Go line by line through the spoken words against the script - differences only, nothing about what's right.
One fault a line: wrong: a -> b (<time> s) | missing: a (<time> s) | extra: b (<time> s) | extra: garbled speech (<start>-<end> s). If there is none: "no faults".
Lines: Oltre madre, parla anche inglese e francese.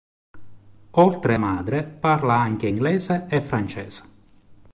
no faults